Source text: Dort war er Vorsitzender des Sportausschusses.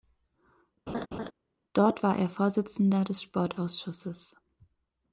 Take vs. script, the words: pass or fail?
pass